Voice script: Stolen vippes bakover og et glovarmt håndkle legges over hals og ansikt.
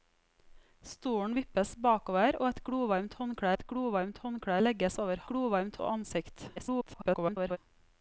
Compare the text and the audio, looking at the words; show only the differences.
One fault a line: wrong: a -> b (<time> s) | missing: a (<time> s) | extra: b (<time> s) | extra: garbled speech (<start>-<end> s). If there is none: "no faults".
extra: et glovarmt håndkle (3.5 s)
wrong: hals -> glovarmt (5.3 s)
extra: garbled speech (6.6-7.6 s)